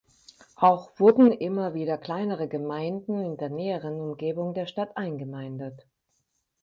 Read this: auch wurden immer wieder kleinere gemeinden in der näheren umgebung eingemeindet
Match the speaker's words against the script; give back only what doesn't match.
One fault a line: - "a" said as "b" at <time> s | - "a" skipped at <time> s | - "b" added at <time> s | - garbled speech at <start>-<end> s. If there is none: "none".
- "der stadt" added at 4.5 s